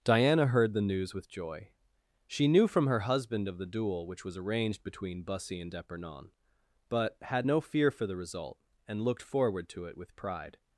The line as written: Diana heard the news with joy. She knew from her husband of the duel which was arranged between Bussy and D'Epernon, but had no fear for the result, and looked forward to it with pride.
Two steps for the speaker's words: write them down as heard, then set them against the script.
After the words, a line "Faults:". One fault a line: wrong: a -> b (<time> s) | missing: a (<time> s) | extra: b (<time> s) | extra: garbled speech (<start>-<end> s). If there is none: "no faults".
Diana heard the news with joy. She knew from her husband of the duel which was arranged between Bussy and D'Epernon, but had no fear for the result, and looked forward to it with pride.
Faults:
no faults